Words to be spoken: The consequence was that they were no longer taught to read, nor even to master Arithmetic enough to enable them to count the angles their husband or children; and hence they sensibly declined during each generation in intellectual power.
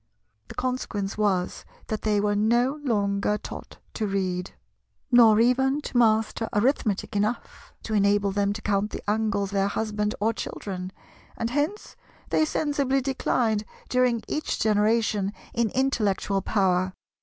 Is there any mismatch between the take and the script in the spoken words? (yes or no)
no